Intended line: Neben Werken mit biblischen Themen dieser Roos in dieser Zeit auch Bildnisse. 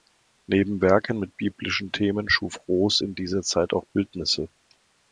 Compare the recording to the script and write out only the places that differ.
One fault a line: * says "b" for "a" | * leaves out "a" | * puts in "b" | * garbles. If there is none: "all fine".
* says "schuf" for "dieser"